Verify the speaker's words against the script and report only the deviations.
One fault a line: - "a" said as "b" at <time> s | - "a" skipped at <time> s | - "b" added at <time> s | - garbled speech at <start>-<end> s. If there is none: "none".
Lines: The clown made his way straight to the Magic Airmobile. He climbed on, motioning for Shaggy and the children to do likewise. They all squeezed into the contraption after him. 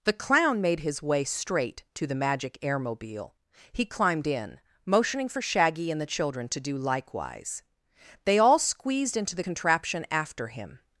- "on" said as "in" at 4.2 s